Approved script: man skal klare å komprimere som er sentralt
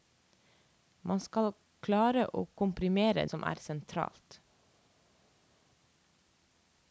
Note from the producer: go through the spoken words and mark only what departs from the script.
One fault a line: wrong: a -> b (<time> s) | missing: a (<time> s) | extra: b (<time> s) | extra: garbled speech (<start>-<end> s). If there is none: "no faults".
no faults